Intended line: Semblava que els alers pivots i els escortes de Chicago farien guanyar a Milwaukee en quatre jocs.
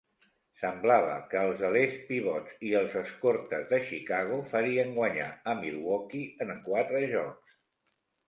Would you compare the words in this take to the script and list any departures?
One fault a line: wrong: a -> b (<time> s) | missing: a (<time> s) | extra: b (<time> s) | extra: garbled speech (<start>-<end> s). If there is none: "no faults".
no faults